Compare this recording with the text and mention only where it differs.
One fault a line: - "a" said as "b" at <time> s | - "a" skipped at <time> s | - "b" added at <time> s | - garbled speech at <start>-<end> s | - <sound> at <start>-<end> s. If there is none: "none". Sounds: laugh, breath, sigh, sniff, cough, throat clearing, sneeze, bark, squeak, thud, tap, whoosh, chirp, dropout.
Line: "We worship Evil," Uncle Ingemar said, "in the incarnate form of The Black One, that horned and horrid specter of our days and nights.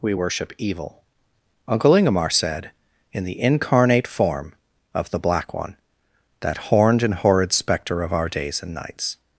none